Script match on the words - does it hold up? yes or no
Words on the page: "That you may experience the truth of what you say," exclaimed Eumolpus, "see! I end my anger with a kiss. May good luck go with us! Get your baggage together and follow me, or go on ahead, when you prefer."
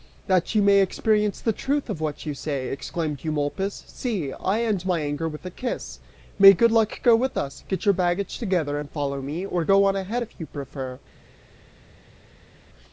no